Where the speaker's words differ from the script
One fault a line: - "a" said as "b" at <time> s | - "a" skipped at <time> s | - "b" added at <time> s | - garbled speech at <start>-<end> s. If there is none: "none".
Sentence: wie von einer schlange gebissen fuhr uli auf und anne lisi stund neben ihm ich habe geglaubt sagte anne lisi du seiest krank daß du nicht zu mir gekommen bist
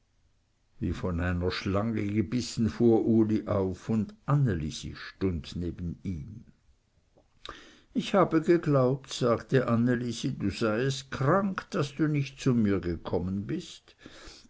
none